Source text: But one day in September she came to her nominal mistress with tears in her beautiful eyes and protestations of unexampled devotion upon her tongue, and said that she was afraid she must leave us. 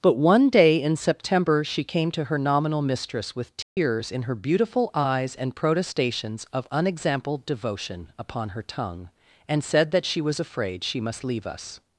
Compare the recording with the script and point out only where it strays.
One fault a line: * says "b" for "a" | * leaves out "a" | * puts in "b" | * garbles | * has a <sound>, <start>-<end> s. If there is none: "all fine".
* has a dropout, 3.6-3.8 s